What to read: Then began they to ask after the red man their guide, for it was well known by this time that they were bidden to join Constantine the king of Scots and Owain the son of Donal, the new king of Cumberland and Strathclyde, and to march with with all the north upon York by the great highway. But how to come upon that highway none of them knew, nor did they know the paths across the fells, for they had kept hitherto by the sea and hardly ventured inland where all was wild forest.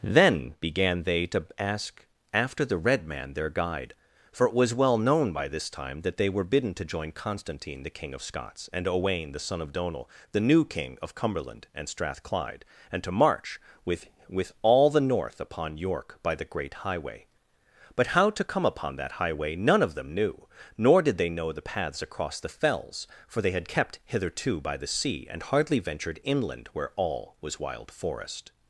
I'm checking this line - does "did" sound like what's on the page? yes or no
yes